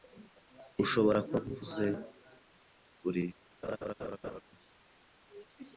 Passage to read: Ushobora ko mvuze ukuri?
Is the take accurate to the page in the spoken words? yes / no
yes